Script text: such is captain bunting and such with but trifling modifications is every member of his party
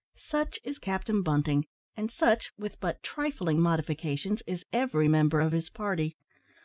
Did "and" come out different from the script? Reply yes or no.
no